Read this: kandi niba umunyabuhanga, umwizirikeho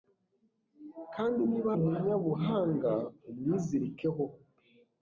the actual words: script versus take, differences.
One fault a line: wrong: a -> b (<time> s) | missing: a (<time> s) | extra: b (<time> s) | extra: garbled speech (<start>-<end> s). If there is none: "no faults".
no faults